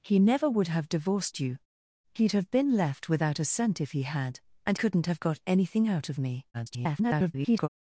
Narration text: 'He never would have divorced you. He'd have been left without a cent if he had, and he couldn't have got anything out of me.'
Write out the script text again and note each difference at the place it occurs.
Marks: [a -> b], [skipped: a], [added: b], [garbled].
'He never would have divorced you. He'd have been left without a cent if he had, and [skipped: he] couldn't have got anything out of me.' [garbled]